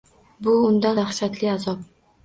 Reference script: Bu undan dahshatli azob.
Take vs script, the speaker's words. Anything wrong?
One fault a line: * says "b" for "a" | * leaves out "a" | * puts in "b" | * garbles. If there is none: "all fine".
all fine